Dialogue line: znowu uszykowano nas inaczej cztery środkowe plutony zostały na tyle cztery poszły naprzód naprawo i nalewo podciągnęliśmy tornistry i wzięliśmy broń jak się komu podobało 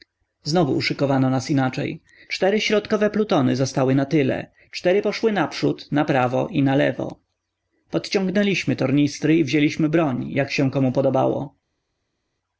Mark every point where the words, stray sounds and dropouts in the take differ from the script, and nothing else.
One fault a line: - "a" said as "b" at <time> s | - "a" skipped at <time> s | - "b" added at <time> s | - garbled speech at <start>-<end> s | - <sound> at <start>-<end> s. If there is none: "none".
none